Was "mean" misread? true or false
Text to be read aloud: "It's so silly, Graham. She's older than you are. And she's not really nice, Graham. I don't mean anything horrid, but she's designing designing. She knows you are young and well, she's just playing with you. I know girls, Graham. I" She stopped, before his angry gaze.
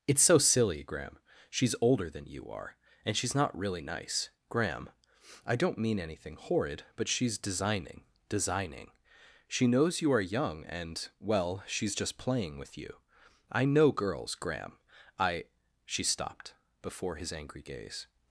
false